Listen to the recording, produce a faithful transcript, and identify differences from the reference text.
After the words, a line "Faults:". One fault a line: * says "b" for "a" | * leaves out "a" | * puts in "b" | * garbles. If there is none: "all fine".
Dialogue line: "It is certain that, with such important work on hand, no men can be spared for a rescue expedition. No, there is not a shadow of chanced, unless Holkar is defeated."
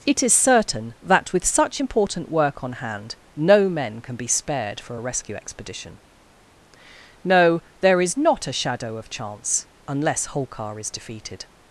"It is certain that, with such important work on hand, no men can be spared for a rescue expedition. No, there is not a shadow of chance, unless Holkar is defeated."
Faults:
* says "chance" for "chanced"